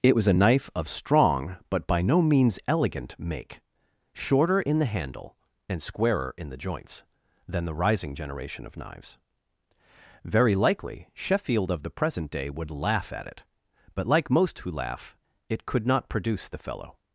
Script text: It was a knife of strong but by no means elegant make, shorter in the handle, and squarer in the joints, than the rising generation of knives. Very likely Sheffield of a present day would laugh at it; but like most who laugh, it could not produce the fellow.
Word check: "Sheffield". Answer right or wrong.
right